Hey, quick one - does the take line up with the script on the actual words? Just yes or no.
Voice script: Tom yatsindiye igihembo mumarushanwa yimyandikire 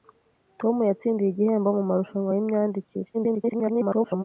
no